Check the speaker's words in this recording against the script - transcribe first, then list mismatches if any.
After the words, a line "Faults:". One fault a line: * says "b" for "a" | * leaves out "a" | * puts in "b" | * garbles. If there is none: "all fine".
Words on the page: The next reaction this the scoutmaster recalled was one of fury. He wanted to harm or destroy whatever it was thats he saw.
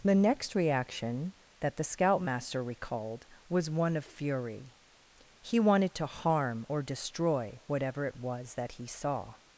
The next reaction that the scoutmaster recalled was one of fury. He wanted to harm or destroy whatever it was that he saw.
Faults:
* says "that" for "this"
* says "that" for "thats"